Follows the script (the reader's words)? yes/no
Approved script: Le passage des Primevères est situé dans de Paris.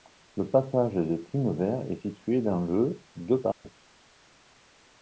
no